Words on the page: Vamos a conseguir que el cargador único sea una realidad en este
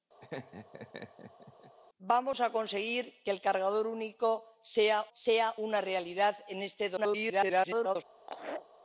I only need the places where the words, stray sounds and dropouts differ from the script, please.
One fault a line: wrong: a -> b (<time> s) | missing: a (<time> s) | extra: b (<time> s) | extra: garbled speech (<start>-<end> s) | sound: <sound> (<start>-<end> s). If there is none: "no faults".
sound: laugh (0.2-1.7 s)
extra: sea (5.1 s)
extra: garbled speech (7.0-8.0 s)
sound: laugh (8.2-8.7 s)